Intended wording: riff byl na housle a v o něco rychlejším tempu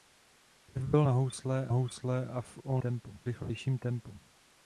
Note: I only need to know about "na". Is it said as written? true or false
true